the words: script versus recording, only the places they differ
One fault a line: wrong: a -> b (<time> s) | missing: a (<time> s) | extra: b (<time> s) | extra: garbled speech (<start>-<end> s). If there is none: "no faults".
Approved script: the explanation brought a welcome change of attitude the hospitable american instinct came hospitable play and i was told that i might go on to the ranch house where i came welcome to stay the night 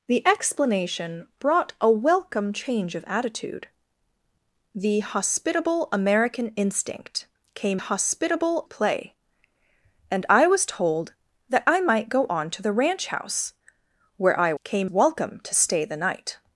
no faults